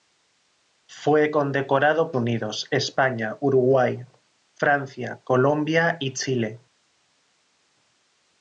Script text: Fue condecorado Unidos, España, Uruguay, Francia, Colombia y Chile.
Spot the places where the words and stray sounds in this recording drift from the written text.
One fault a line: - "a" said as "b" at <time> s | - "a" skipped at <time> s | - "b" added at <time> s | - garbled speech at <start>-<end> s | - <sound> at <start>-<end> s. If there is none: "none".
none